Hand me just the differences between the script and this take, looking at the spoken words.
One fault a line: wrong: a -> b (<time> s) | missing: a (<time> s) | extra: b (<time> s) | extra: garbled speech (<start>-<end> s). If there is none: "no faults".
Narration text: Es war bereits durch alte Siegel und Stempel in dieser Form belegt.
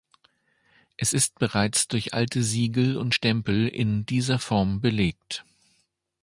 wrong: war -> ist (1.1 s)